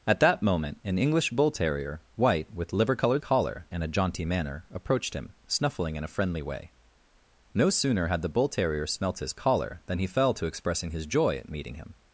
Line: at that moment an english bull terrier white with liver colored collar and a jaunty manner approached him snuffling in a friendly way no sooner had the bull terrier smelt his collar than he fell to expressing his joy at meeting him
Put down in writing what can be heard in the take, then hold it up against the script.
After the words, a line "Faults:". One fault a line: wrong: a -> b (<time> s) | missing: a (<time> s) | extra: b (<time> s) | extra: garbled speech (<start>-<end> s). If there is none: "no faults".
at that moment an english bull terrier white with liver colored collar and a jaunty manner approached him snuffling in a friendly way no sooner had the bull terrier smelt his collar than he fell to expressing his joy at meeting him
Faults:
no faults